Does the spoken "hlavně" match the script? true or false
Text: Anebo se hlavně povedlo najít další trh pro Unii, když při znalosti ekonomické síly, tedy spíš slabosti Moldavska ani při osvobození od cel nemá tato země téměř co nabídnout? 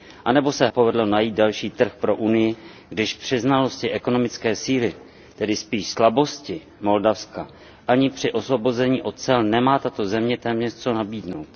false